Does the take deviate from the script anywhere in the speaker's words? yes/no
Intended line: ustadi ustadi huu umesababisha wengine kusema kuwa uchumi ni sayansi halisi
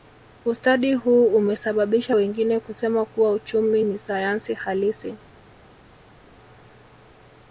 yes